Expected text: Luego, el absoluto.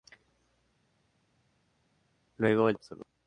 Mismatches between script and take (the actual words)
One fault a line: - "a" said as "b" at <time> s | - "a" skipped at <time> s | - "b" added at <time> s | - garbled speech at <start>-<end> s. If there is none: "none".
none